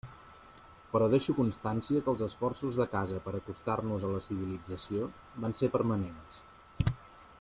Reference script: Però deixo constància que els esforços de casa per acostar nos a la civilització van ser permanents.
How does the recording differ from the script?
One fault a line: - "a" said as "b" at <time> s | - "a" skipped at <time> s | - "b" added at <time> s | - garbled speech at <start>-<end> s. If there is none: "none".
none